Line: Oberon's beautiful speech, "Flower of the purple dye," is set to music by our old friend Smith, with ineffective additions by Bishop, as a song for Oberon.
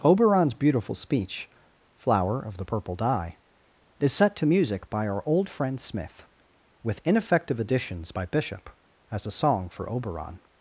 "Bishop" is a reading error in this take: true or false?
false